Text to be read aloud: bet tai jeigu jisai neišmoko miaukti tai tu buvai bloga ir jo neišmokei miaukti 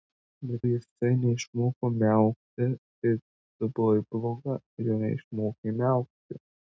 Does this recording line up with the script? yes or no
no